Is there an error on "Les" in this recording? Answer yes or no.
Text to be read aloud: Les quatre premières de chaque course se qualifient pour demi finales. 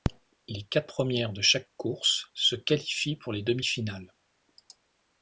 no